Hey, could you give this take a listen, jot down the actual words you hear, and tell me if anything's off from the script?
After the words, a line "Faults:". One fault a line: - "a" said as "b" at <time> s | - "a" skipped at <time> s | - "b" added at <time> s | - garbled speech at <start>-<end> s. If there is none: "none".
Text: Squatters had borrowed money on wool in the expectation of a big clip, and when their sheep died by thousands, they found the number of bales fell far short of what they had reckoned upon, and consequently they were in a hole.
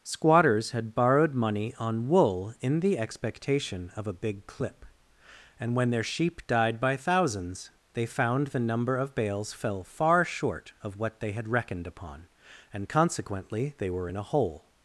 Squatters had borrowed money on wool in the expectation of a big clip, and when their sheep died by thousands, they found the number of bales fell far short of what they had reckoned upon, and consequently they were in a hole.
Faults:
none